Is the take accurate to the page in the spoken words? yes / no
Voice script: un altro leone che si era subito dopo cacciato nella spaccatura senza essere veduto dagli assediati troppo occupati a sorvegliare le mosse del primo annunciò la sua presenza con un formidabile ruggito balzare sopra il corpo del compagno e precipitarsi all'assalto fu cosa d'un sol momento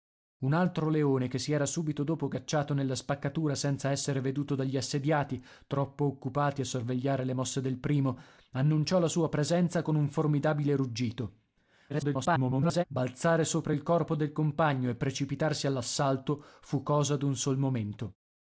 no